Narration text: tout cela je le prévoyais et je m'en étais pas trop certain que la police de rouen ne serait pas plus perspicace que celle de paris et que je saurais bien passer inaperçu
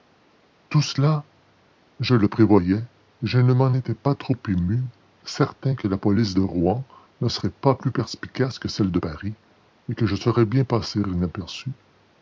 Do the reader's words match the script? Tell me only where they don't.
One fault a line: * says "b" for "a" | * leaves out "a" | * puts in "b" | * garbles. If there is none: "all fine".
* puts in "ne"
* puts in "ému"